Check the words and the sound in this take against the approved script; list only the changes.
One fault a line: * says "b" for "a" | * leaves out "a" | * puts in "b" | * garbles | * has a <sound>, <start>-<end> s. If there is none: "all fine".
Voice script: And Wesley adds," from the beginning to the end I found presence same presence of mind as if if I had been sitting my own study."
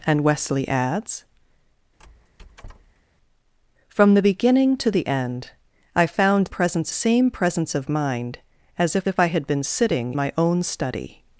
* has a squeak, 2.0-3.0 s